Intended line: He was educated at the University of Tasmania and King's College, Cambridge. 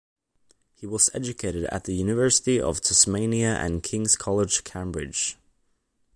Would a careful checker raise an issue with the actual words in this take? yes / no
no